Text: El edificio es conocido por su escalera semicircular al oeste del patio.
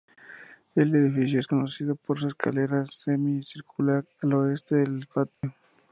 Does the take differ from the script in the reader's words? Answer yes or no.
no